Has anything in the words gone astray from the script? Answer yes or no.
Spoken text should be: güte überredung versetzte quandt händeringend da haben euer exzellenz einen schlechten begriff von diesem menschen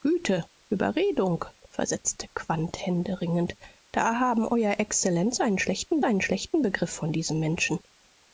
yes